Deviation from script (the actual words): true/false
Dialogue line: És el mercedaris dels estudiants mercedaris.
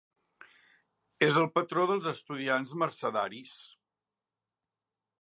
true